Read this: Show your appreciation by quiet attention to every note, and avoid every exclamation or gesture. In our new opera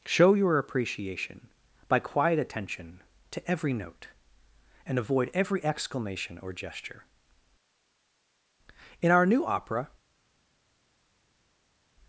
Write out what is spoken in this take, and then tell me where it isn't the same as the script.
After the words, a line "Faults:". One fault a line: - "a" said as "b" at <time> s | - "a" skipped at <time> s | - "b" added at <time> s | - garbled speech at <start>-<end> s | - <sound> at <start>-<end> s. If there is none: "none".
Show your appreciation by quiet attention to every note, and avoid every exclamation or gesture. In our new opera
Faults:
none